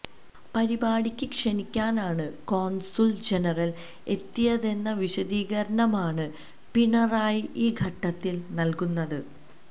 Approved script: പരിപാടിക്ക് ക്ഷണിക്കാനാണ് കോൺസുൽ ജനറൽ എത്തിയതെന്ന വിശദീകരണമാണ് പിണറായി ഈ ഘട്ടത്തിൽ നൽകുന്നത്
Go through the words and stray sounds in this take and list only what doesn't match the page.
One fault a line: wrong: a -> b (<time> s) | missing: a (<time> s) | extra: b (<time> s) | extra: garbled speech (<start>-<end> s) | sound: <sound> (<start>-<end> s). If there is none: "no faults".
no faults